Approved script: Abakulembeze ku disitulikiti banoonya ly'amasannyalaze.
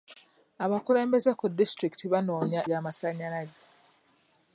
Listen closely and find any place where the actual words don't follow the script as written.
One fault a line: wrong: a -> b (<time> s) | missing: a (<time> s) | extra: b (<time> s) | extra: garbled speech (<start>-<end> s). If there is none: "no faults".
no faults